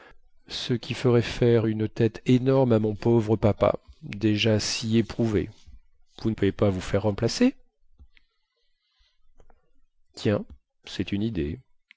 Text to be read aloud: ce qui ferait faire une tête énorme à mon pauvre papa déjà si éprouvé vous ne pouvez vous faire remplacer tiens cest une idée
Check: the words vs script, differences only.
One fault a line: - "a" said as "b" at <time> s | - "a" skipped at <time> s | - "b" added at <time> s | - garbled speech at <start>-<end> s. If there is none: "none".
- "pas" added at 6.5 s